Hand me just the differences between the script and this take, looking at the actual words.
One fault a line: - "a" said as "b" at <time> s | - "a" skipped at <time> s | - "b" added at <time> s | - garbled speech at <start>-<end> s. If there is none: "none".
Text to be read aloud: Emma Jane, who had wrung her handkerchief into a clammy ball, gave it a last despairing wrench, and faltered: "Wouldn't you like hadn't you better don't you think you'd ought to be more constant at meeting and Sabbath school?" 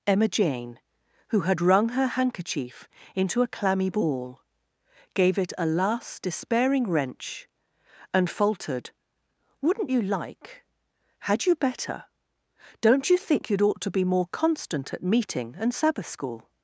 - "hadn't" said as "had" at 11.2 s